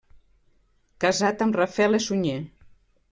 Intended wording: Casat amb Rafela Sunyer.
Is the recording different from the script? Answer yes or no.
no